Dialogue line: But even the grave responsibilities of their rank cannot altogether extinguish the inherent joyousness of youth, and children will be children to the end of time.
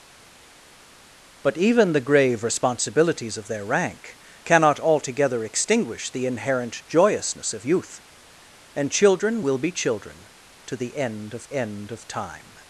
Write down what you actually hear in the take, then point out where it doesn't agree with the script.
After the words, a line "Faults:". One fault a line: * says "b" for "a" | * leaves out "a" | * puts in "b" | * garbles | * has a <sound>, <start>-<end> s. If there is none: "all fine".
But even the grave responsibilities of their rank cannot altogether extinguish the inherent joyousness of youth, and children will be children to the end of end of time.
Faults:
* puts in "end of"